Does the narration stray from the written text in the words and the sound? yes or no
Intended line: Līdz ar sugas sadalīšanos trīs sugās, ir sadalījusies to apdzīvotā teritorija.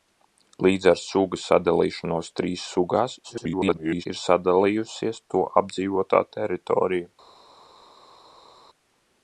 yes